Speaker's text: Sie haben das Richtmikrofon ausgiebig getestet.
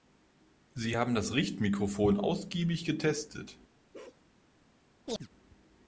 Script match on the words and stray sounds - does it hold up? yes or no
no